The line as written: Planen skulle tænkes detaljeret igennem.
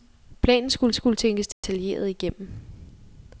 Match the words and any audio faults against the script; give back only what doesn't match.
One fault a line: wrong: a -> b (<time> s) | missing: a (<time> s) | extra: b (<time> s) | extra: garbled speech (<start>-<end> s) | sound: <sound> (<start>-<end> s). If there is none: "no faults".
extra: skulle (0.9 s)
sound: dropout (1.5-1.6 s)